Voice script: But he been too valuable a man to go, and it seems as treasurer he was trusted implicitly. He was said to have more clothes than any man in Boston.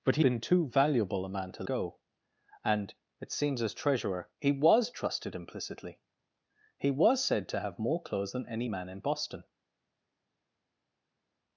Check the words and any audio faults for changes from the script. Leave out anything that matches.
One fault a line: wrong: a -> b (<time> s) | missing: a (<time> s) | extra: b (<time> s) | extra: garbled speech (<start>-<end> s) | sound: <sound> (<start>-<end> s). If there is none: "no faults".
no faults